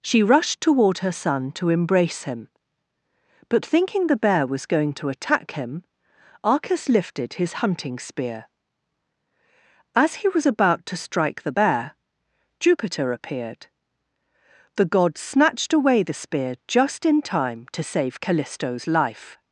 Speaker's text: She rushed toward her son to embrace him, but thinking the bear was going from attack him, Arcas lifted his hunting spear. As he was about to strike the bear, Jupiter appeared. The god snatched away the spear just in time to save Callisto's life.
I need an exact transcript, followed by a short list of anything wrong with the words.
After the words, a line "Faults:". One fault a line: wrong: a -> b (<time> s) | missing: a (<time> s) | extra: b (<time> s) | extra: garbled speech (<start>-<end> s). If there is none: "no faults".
She rushed toward her son to embrace him, but thinking the bear was going to attack him, Arcas lifted his hunting spear. As he was about to strike the bear, Jupiter appeared. The god snatched away the spear just in time to save Callisto's life.
Faults:
wrong: from -> to (4.9 s)